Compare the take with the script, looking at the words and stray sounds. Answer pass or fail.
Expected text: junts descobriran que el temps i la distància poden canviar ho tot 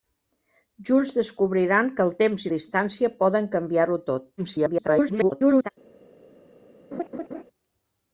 fail